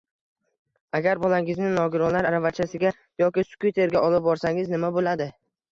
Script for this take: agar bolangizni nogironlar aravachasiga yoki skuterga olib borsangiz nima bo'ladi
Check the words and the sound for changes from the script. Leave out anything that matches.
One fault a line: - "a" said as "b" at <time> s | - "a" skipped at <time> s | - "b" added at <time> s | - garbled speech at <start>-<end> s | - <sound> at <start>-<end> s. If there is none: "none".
none